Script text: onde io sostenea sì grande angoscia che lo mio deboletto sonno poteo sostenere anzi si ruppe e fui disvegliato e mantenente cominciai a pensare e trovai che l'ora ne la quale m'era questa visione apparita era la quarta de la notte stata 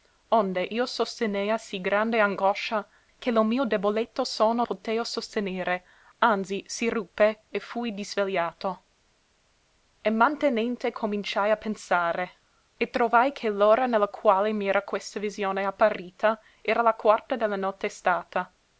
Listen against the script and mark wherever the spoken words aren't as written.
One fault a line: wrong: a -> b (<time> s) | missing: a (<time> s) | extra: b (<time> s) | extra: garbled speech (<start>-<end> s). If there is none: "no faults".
no faults